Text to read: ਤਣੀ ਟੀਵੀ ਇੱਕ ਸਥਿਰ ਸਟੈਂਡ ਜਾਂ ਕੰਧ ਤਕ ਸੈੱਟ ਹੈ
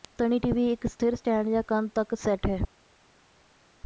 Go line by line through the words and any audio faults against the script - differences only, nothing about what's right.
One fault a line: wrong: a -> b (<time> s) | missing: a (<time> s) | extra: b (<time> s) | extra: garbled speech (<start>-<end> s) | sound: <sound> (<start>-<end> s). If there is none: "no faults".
no faults